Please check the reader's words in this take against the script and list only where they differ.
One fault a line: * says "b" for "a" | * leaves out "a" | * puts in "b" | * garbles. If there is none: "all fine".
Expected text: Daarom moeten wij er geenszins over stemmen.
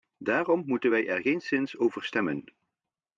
all fine